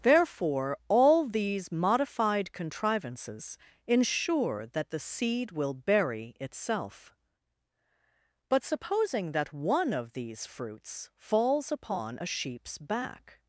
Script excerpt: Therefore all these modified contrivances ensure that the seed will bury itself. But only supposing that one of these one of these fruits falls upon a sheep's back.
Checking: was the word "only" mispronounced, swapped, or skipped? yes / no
yes